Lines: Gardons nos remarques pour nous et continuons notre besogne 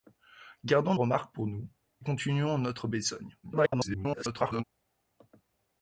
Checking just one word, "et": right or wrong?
wrong